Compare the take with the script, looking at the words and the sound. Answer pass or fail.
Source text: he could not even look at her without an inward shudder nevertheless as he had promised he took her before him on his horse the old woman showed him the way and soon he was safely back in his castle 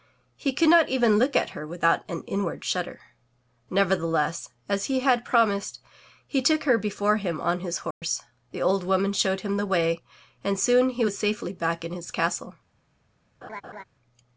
fail